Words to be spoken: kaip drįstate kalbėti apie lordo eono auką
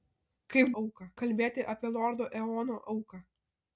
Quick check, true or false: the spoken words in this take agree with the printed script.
false